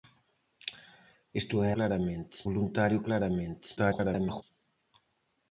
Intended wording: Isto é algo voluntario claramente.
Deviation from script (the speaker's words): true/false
true